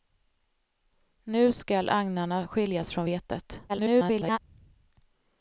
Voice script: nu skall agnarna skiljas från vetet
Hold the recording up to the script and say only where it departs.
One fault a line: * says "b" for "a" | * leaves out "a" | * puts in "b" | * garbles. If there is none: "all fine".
* garbles